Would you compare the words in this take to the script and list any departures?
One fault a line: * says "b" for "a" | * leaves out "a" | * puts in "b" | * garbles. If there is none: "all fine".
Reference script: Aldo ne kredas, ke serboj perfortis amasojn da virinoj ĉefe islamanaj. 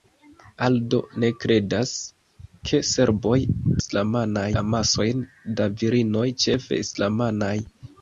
* says "islamanaj" for "perfortis"